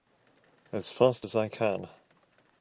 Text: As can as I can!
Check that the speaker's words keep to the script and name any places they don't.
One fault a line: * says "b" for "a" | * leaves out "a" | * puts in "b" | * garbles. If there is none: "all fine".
* says "fast" for "can"